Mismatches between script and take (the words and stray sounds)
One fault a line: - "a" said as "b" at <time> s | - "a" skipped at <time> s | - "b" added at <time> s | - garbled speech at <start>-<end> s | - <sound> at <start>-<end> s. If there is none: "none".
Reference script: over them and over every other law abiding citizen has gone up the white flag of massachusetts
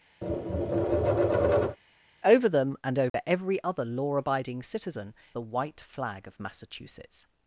- tap at 0.2-1.8 s
- dropout at 3.1-3.1 s
- "has gone up" skipped at 5.1 s